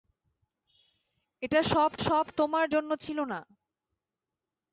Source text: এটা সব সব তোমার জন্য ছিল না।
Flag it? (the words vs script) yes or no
no